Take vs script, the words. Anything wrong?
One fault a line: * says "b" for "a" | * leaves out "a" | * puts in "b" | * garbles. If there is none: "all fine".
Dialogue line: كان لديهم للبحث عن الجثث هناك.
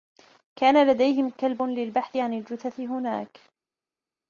* puts in "كلب"